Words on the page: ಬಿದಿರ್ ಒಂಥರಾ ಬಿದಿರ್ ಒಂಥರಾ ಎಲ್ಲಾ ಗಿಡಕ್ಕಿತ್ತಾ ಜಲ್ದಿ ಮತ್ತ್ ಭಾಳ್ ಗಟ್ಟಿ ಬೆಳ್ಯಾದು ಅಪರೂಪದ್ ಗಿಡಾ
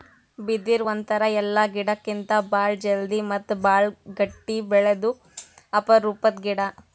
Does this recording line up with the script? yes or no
no